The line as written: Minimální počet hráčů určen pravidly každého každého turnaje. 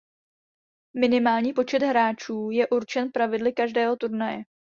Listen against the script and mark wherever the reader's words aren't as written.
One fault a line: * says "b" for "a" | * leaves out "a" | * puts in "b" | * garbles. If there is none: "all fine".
* puts in "je"
* leaves out "každého"